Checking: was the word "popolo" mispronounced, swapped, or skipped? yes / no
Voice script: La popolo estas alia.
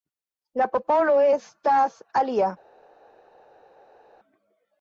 no